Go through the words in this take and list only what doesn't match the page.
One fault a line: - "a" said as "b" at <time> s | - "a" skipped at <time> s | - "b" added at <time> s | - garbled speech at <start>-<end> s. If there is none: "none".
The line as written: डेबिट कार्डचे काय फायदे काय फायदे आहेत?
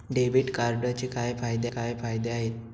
none